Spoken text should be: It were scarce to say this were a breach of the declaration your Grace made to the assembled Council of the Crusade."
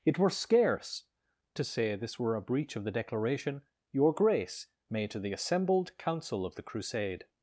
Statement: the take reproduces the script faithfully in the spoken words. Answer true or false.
true